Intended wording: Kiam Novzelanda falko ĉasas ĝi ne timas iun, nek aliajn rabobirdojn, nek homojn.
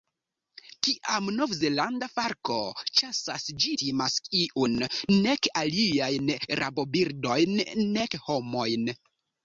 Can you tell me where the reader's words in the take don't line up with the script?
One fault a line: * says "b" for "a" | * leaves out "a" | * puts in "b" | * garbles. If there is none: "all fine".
* leaves out "ne"